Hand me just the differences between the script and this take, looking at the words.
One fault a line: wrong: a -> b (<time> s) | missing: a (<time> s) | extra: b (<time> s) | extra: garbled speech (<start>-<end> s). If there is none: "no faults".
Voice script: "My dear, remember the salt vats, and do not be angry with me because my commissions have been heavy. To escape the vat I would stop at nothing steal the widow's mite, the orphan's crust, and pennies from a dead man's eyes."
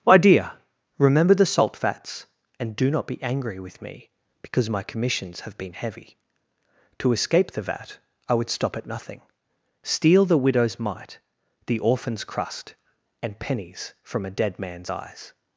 no faults